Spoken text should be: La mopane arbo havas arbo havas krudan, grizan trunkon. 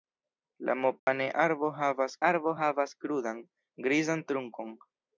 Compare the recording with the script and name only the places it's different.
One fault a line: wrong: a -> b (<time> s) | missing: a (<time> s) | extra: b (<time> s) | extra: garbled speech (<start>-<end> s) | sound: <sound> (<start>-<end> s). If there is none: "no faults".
sound: dropout (1.0-1.1 s)